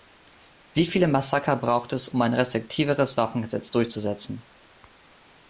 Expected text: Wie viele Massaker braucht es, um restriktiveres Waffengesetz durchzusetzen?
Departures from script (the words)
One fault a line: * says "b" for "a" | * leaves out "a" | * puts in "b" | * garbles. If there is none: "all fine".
* puts in "ein"